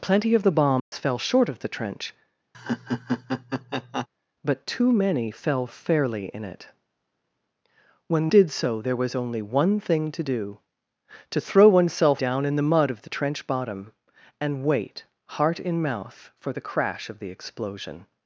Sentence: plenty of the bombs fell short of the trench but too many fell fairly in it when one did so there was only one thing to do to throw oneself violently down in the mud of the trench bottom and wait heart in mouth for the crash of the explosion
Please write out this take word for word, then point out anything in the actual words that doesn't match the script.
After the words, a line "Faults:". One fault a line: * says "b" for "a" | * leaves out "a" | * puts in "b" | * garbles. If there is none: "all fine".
plenty of the bombs fell short of the trench but too many fell fairly in it when did so there was only one thing to do to throw oneself down in the mud of the trench bottom and wait heart in mouth for the crash of the explosion
Faults:
* leaves out "one"
* leaves out "violently"